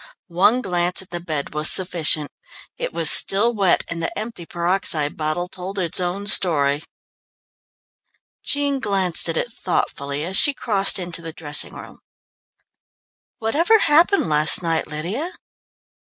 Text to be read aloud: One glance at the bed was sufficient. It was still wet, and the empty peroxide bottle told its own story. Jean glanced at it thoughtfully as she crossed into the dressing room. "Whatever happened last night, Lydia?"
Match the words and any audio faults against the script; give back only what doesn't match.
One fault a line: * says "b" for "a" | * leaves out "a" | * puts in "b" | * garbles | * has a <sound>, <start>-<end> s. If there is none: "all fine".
all fine